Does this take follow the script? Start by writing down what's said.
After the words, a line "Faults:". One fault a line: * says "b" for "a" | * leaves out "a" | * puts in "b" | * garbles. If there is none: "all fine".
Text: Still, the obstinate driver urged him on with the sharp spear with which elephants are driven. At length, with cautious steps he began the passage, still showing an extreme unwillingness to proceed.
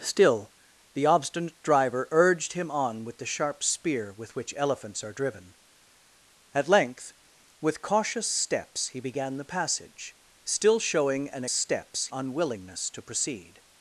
Still, the obstinate driver urged him on with the sharp spear with which elephants are driven. At length, with cautious steps he began the passage, still showing an steps unwillingness to proceed.
Faults:
* says "steps" for "extreme"